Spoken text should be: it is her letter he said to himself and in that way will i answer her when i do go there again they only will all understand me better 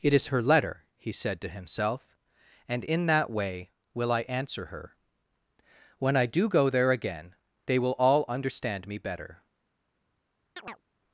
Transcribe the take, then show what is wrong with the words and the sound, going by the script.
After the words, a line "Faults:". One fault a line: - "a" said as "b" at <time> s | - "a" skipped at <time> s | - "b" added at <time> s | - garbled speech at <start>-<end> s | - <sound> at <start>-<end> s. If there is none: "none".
it is her letter he said to himself and in that way will i answer her when i do go there again they will all understand me better
Faults:
- "only" skipped at 7.8 s
- chirp at 10.6-10.8 s